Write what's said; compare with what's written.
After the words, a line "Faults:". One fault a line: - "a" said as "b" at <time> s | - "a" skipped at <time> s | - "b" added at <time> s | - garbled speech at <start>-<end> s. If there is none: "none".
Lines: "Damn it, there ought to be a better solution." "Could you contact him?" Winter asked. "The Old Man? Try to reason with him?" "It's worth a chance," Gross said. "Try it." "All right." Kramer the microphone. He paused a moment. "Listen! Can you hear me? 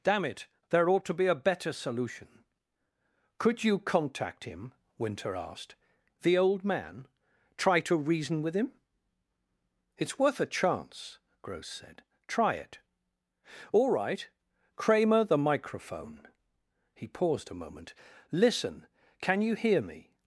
"Damn it, there ought to be a better solution." "Could you contact him?" Winter asked. "The Old Man? Try to reason with him?" "It's worth a chance," Gross said. "Try it." "All right." Kramer the microphone. He paused a moment. "Listen! Can you hear me?
Faults:
none